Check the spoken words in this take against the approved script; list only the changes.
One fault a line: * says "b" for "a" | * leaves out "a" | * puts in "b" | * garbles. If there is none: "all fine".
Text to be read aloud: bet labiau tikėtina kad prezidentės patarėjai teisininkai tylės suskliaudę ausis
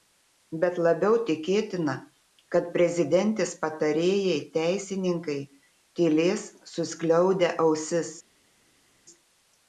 all fine